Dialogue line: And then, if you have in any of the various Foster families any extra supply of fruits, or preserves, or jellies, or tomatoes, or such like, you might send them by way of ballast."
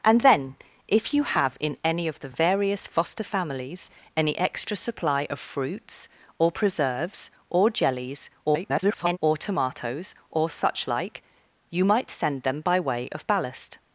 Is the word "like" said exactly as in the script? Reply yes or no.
yes